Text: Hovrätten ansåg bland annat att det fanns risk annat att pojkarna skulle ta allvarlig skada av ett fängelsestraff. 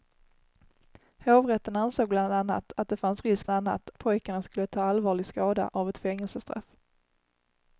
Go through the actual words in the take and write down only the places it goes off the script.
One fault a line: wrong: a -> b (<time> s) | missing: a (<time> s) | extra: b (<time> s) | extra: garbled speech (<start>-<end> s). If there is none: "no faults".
no faults